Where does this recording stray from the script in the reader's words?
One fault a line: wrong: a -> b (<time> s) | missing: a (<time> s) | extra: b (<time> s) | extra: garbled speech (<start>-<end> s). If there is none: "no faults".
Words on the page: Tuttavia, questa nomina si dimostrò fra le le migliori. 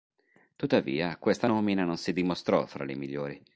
extra: non (1.8 s)
missing: le (2.9 s)